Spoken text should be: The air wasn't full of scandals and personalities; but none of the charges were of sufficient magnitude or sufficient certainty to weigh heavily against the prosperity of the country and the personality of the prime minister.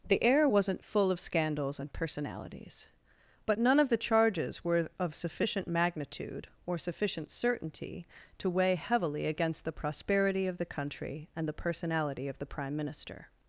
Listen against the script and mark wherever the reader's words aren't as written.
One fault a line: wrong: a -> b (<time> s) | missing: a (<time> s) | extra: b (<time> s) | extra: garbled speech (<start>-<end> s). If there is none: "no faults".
no faults